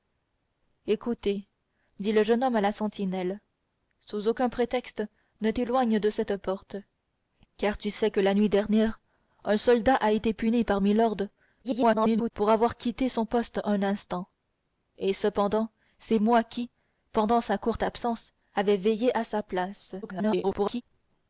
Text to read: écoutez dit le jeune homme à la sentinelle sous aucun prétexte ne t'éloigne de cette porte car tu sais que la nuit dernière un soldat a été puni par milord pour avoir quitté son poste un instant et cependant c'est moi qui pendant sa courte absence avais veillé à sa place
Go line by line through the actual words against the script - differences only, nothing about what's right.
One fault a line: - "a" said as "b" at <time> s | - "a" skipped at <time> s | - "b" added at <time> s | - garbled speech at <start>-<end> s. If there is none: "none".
- garbled speech at 11.6-12.3 s
- garbled speech at 20.0-20.8 s